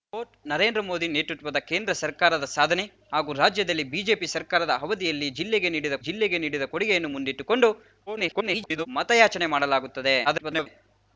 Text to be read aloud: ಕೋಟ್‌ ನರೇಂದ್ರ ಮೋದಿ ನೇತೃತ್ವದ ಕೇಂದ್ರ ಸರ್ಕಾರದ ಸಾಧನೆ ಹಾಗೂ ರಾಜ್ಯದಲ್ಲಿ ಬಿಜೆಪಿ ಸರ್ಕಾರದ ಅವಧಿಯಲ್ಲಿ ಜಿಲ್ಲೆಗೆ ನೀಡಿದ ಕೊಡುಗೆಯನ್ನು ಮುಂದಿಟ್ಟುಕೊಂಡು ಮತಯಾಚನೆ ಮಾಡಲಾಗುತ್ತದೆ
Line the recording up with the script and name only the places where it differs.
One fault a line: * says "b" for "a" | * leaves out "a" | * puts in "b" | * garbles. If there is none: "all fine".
* puts in "ಜಿಲ್ಲೆಗೆ ನೀಡಿದ"
* garbles
* garbles